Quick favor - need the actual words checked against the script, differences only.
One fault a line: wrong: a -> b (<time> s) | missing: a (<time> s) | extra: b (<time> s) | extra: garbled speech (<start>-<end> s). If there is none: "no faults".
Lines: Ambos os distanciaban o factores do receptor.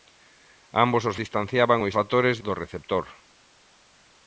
no faults